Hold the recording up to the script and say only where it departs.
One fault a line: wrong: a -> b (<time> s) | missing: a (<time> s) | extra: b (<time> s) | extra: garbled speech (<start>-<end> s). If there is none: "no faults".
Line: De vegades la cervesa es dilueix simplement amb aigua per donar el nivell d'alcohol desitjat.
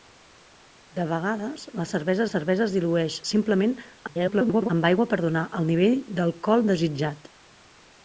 extra: cervesa (2.3 s)
extra: garbled speech (4.1-4.7 s)